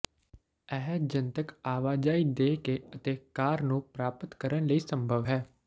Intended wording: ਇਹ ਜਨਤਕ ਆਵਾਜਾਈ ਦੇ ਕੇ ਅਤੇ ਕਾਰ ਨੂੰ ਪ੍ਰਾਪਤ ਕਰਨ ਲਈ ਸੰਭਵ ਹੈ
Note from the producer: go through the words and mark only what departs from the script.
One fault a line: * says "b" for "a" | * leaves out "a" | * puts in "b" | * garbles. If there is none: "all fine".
all fine